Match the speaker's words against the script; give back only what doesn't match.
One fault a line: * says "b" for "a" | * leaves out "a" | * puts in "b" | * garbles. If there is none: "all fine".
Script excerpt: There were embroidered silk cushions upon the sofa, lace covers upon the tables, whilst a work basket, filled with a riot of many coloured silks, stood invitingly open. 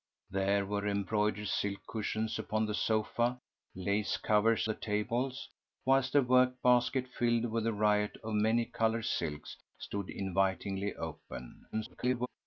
* leaves out "upon"
* garbles